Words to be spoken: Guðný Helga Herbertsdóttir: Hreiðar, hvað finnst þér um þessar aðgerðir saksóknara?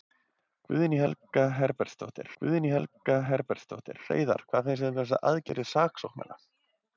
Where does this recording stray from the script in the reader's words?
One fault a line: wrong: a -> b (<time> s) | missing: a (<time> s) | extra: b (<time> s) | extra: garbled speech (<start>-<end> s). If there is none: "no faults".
extra: guðný Helga Herbertsdóttir (2.4 s)